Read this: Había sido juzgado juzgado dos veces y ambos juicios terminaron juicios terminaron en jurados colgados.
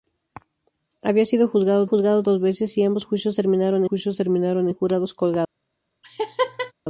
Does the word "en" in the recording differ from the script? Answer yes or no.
no